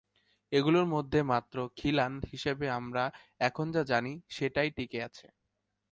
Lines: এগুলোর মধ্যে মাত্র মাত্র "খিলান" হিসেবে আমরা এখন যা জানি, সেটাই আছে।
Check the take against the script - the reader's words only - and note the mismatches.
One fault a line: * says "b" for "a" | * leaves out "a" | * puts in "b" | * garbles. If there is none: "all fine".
* leaves out "মাত্র"
* puts in "টিকে"